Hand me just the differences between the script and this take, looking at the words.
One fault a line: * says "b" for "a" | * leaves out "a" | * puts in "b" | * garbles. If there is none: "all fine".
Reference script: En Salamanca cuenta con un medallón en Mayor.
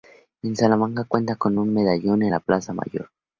* puts in "la Plaza"